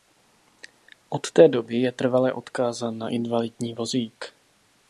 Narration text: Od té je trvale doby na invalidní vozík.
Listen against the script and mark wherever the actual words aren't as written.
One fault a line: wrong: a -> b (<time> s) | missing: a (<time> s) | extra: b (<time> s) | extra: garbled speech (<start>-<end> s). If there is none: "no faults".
extra: doby (1.5 s)
wrong: doby -> odkázán (2.3 s)